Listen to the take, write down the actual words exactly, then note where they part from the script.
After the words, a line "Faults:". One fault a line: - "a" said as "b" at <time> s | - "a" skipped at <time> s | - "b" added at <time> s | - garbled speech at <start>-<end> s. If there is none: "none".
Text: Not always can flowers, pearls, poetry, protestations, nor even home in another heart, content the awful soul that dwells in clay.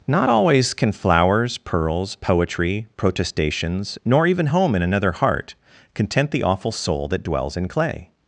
Not always can flowers, pearls, poetry, protestations, nor even home in another heart, content the awful soul that dwells in clay.
Faults:
none